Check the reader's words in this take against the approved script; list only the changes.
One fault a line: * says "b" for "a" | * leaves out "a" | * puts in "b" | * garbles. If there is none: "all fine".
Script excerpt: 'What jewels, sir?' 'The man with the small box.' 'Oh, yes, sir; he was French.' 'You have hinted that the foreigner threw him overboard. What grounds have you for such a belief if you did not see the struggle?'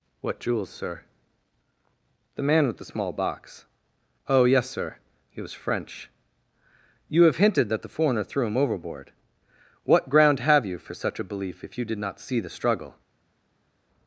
* says "ground" for "grounds"